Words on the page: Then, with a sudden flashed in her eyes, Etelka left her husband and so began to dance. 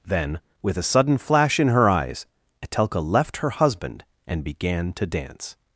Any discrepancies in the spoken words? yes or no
yes